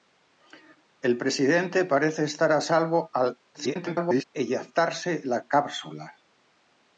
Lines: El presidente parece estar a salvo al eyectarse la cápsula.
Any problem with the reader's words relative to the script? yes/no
yes